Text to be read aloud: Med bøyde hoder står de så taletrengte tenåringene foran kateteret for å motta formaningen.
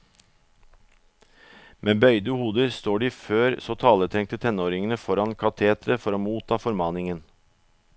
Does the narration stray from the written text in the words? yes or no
yes